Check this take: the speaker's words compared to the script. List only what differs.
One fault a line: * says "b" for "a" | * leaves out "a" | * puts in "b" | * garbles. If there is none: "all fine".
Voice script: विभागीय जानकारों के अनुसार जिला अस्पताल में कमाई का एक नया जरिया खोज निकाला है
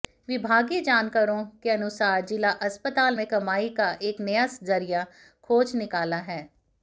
all fine